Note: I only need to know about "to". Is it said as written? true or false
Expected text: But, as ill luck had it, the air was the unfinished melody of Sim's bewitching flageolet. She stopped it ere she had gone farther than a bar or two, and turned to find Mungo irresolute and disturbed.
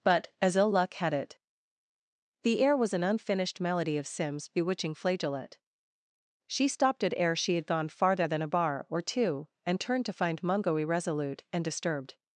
true